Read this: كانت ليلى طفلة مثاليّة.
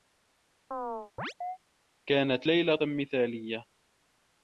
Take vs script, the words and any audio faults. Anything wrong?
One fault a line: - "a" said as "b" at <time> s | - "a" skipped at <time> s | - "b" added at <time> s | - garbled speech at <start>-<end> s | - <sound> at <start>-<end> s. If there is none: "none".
- chirp at 0.7-1.6 s
- "طفلة" skipped at 2.8 s